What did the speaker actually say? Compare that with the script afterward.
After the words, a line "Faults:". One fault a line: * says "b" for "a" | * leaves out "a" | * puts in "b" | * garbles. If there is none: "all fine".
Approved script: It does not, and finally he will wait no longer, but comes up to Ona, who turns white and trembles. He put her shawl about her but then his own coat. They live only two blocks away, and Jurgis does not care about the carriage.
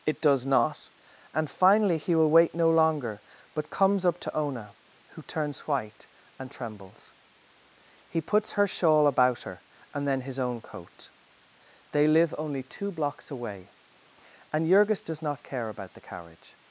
It does not, and finally he will wait no longer, but comes up to Ona, who turns white and trembles. He puts her shawl about her and then his own coat. They live only two blocks away, and Jurgis does not care about the carriage.
Faults:
* says "puts" for "put"
* says "and" for "but"